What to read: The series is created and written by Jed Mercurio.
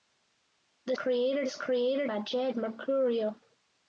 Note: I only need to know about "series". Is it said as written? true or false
false